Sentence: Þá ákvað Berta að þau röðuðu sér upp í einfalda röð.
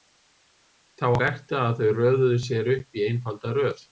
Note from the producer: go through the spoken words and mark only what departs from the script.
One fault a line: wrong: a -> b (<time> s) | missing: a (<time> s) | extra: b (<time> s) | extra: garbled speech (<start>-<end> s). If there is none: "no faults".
missing: ákvað (1.1 s)